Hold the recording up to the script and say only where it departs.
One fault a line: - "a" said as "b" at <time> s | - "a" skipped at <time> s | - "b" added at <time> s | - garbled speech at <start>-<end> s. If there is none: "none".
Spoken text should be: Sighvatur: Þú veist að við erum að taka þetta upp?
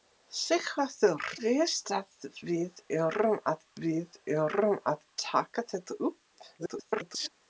- "Þú veist" said as "Veist að við erum" at 1.4 s
- garbled speech at 6.6-7.3 s